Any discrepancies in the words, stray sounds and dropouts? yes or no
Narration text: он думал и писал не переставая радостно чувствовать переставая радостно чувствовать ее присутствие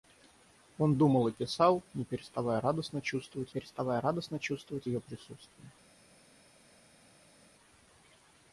no